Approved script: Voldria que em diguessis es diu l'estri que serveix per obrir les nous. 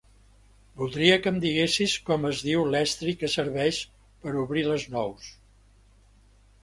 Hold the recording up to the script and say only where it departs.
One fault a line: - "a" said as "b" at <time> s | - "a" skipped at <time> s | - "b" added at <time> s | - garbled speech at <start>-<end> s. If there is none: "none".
- "com" added at 2.1 s